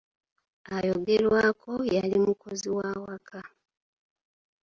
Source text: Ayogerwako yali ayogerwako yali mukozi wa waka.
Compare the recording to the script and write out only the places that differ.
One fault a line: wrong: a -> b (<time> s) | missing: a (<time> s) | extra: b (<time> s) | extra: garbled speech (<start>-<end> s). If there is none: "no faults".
missing: ayogerwako yali (2.2 s)